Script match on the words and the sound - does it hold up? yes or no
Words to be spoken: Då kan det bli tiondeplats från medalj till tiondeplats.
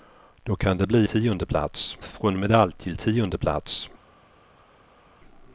yes